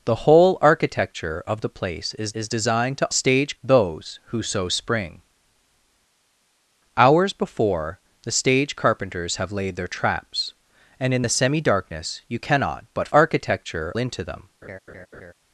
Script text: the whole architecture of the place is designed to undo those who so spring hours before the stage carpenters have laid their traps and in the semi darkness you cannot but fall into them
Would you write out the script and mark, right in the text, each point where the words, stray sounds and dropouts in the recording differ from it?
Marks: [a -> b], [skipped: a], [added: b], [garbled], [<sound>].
the whole architecture of the place is [added: is] designed to [undo -> stage] those who so spring hours before the stage carpenters have laid their traps and in the semi darkness you cannot but [fall -> architecture] into them [laugh]